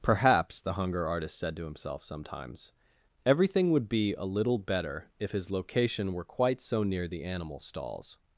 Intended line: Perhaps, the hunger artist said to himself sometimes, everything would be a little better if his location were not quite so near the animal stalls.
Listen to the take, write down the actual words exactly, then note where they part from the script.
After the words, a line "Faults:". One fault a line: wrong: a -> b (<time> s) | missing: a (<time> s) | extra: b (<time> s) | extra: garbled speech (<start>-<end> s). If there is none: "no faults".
Perhaps, the hunger artist said to himself sometimes, everything would be a little better if his location were quite so near the animal stalls.
Faults:
missing: not (6.2 s)